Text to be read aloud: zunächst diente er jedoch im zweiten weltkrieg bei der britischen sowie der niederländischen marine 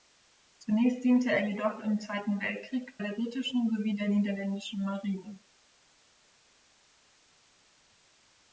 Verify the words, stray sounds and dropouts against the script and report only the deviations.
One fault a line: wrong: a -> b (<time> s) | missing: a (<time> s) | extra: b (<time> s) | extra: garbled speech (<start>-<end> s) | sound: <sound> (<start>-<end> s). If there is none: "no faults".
missing: bei (3.0 s)